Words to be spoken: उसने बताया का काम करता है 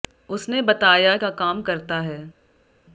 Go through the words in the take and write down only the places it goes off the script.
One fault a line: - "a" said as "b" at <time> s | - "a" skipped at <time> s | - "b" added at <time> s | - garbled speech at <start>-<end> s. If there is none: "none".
none